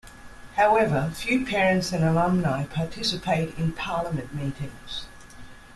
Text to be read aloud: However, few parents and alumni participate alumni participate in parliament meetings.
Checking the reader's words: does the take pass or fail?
fail